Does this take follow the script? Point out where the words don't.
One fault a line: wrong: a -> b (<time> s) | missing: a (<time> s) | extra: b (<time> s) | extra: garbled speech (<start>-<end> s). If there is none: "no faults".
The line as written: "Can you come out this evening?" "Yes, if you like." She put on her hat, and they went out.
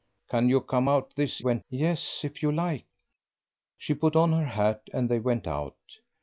wrong: evening -> went (1.4 s)